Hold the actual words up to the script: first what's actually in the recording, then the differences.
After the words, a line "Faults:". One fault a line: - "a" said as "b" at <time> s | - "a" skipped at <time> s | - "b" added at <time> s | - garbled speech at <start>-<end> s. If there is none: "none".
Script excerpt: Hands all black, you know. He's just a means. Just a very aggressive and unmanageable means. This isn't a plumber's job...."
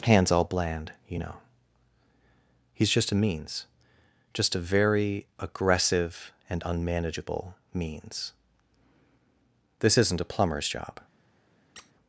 Hands all bland, you know. He's just a means. Just a very aggressive and unmanageable means. This isn't a plumber's job...."
Faults:
- "black" said as "bland" at 0.4 s